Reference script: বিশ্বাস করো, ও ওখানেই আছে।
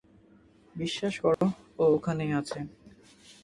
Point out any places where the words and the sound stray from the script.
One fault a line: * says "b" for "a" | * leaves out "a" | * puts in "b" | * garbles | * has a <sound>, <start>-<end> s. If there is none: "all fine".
* has a dropout, 1.3-1.4 s